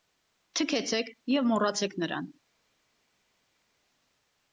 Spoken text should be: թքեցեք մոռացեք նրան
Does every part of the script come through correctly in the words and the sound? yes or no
no